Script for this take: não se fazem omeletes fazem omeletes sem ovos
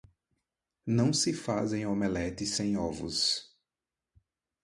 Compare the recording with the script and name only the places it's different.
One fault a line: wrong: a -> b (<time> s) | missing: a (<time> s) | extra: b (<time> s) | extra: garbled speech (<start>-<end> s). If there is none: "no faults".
missing: fazem omeletes (2.5 s)